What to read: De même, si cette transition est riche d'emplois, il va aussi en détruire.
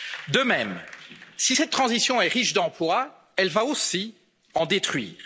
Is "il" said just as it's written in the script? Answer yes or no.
no